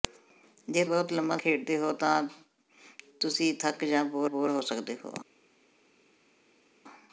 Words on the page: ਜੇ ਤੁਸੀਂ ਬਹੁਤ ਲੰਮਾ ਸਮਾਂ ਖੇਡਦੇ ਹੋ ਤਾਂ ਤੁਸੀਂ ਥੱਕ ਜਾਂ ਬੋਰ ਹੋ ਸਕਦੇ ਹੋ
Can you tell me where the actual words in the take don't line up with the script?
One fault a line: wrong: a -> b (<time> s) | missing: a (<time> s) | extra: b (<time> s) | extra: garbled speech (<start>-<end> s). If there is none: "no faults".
missing: ਤੁਸੀਂ (0.8 s)
missing: ਸਮਾਂ (1.4 s)
extra: ਬੋਰ (4.2 s)